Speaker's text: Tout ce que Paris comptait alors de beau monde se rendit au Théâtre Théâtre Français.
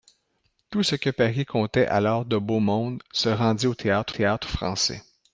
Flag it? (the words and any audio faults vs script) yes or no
no